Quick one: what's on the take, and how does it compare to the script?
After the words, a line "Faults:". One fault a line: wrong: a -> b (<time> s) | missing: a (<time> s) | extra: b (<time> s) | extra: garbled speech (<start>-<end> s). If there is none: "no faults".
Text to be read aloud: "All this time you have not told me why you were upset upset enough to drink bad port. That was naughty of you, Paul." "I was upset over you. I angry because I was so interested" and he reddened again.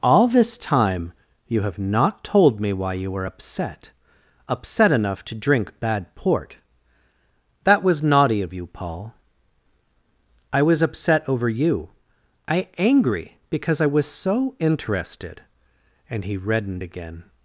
"All this time you have not told me why you were upset upset enough to drink bad port. That was naughty of you, Paul." "I was upset over you. I angry because I was so interested" and he reddened again.
Faults:
no faults